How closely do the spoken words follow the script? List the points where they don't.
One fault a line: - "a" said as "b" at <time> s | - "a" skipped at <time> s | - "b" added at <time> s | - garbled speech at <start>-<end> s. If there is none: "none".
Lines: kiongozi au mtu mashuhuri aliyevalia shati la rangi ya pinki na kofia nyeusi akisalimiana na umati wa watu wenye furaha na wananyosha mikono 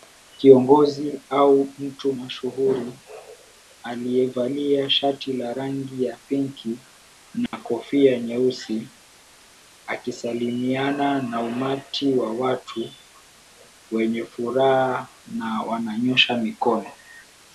none